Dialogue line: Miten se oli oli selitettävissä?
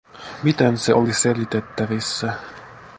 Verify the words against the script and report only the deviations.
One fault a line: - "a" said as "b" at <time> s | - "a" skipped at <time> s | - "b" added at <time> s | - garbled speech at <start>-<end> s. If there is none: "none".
- "oli" skipped at 1.1 s